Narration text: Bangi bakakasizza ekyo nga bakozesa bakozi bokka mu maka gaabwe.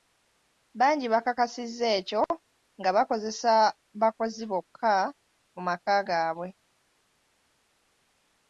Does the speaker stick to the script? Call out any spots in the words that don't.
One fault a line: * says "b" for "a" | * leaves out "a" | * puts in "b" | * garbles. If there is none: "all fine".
all fine